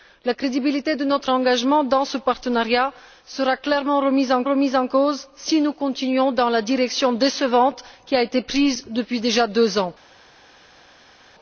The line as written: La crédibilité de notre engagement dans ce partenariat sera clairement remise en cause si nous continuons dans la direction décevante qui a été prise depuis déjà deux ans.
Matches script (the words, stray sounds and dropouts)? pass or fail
fail